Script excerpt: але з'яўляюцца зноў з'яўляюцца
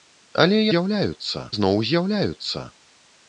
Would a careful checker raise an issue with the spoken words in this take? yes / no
no